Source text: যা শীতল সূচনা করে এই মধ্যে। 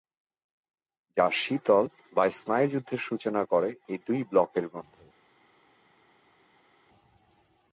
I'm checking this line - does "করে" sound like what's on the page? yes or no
yes